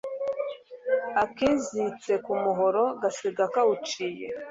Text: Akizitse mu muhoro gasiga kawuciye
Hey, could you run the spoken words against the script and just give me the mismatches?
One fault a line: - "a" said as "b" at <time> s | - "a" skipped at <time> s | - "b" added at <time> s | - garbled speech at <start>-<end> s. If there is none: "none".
- "mu" said as "ku" at 2.2 s